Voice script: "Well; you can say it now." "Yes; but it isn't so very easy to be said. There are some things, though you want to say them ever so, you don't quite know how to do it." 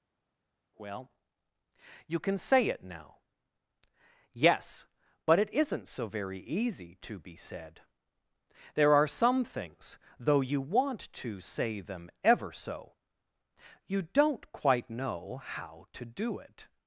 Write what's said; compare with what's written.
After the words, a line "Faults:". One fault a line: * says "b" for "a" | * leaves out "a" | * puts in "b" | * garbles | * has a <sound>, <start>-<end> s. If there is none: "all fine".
"Well; you can say it now." "Yes; but it isn't so very easy to be said. There are some things, though you want to say them ever so, you don't quite know how to do it."
Faults:
all fine